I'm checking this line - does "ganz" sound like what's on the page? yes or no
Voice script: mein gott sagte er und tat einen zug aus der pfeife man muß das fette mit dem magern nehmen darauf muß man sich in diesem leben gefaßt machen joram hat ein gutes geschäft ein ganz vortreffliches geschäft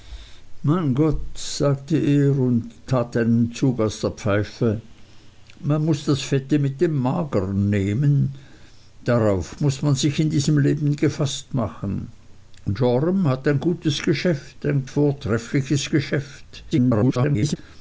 no